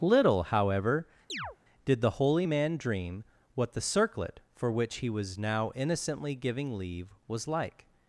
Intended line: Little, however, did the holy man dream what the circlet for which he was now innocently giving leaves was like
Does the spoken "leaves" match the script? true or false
false